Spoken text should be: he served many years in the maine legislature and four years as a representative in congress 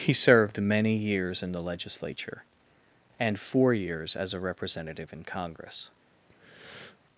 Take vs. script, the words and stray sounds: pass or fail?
fail